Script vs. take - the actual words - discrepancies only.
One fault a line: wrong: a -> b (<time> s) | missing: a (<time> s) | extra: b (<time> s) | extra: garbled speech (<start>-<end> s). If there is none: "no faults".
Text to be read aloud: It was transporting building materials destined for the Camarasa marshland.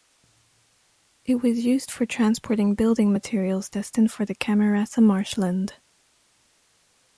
extra: used for (1.6 s)